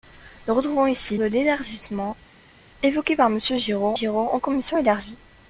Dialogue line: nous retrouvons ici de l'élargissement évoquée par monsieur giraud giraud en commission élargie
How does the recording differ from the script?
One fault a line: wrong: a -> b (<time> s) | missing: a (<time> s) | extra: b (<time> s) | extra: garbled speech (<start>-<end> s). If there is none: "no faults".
no faults